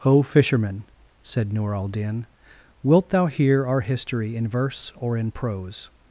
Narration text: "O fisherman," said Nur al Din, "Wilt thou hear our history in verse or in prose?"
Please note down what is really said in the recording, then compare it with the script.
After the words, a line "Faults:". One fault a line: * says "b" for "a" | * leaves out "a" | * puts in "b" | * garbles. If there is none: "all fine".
"O fisherman," said Nur al Din, "Wilt thou hear our history in verse or in prose?"
Faults:
all fine